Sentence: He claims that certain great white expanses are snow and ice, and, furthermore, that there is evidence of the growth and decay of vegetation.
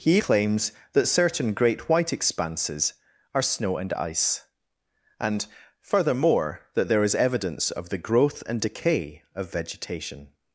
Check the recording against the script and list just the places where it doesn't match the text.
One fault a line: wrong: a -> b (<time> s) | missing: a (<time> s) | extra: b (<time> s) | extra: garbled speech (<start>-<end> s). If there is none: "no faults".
no faults